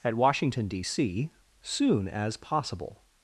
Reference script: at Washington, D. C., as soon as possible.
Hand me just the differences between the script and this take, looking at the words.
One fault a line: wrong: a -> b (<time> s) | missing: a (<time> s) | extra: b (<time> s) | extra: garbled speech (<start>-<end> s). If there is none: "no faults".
missing: as (1.3 s)